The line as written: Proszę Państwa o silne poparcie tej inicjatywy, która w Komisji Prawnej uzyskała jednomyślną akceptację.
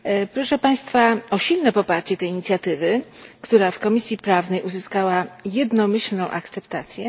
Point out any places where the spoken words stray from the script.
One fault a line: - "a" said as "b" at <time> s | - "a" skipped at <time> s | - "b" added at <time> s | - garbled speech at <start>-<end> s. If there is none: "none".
none